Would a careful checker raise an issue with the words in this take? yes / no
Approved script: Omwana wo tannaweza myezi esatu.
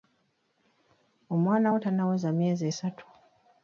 no